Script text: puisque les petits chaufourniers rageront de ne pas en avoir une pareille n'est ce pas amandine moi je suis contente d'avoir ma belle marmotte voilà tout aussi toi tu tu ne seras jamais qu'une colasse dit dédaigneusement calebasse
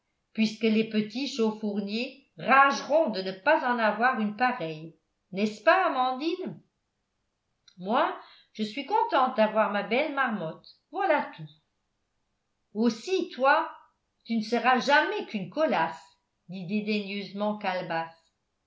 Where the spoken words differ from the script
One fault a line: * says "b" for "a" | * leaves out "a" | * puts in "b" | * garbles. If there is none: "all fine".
* leaves out "tu"